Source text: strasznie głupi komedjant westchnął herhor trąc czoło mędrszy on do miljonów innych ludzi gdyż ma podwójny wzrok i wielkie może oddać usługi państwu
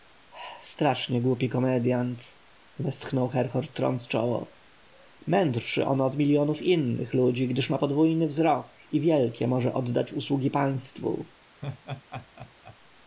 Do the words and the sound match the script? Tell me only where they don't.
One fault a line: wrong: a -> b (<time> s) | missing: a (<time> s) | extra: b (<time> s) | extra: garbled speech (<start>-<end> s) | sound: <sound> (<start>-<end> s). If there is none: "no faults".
wrong: do -> od (6.0 s)
sound: laugh (11.5-12.8 s)